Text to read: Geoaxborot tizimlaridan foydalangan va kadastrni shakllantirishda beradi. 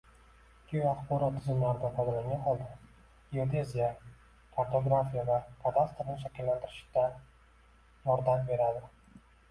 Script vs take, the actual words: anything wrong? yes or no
yes